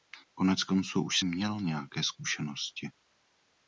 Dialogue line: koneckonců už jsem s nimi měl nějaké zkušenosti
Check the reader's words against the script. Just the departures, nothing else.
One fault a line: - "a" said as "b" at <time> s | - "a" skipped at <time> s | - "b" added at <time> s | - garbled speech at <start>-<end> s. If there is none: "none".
- "jsem s nimi" skipped at 1.2 s